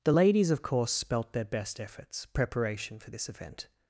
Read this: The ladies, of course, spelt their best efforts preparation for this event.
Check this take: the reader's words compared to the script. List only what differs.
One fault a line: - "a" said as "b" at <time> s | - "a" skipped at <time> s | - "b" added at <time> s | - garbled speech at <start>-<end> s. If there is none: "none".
none